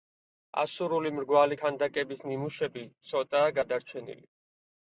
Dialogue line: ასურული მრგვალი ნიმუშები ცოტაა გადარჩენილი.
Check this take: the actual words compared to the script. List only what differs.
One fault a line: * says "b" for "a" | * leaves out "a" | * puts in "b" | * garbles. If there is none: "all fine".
* puts in "ქანდაკების"